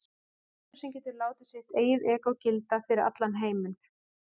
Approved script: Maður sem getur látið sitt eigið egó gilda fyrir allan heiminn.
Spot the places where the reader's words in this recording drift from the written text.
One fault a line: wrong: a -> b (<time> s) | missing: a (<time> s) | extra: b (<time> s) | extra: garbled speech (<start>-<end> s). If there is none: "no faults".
no faults